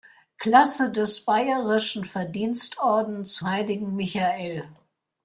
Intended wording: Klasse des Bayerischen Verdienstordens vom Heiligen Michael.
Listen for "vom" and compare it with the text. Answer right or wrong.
wrong